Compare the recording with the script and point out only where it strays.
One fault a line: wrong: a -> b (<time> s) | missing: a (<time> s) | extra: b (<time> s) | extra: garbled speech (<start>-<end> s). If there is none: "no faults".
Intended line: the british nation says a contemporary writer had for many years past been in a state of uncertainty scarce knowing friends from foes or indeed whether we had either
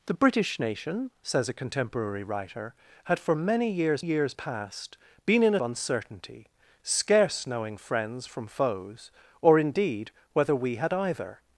extra: years (4.0 s)
missing: a state of (5.6 s)